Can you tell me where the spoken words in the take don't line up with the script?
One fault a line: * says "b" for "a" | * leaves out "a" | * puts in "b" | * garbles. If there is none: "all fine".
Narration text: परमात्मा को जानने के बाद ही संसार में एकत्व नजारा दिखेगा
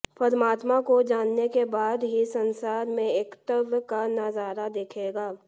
* puts in "का"